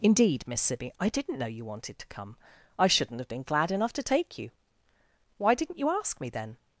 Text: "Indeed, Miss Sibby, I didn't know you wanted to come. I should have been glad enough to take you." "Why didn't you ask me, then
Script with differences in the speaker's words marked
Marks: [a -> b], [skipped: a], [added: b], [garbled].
"Indeed, Miss Sibby, I didn't know you wanted to come. I [should -> shouldn't] have been glad enough to take you." "Why didn't you ask me, then